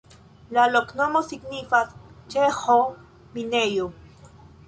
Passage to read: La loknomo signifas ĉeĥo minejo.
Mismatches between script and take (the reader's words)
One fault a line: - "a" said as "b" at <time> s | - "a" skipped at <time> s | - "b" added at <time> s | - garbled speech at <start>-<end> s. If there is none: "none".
none